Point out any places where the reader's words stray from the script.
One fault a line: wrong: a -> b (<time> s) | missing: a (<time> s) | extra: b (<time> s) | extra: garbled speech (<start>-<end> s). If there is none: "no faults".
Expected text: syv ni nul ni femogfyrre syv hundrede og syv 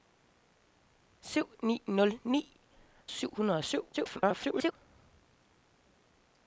missing: femogfyrre (2.4 s)
extra: garbled speech (3.9-4.7 s)